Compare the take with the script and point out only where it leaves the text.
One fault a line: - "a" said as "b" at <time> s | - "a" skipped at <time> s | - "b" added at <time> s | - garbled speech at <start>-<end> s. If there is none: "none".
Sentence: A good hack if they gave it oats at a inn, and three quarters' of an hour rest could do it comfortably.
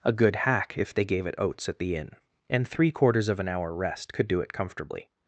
- "a" said as "the" at 1.8 s